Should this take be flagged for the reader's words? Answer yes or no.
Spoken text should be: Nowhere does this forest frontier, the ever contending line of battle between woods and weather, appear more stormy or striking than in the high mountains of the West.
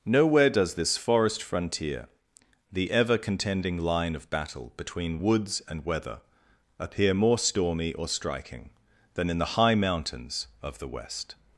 no